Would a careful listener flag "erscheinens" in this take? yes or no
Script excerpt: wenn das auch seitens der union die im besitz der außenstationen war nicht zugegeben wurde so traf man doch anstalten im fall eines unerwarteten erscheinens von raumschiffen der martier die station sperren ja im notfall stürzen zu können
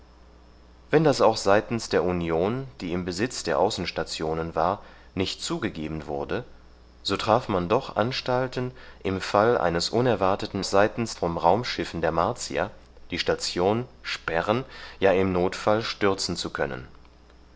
yes